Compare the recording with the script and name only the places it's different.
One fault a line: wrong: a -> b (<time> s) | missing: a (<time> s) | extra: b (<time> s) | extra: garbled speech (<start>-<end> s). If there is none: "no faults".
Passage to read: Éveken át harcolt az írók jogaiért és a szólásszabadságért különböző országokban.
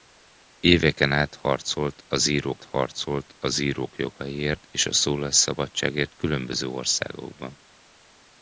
extra: harcolt az írók (2.6 s)